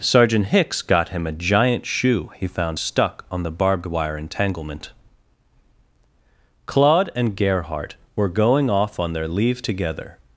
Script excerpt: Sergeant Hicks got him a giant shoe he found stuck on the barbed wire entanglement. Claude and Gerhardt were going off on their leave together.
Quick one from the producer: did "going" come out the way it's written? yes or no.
yes